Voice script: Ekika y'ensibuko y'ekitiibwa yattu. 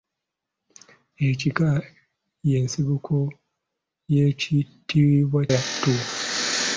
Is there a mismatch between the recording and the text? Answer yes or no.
no